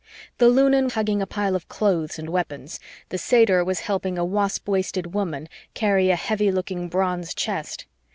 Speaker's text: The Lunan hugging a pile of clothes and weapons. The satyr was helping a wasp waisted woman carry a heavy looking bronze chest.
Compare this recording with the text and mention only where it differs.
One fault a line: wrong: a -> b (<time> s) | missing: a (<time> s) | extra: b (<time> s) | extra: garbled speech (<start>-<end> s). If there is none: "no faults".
no faults